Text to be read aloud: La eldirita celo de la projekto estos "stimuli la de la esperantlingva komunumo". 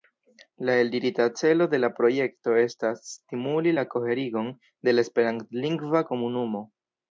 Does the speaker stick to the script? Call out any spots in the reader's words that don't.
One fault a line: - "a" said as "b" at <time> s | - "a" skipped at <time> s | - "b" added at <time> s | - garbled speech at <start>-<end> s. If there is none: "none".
- "estos" said as "estas" at 2.6 s
- "koherigon" added at 4.0 s